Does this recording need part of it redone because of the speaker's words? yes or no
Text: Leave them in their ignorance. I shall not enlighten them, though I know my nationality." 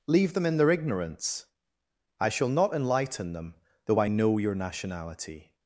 yes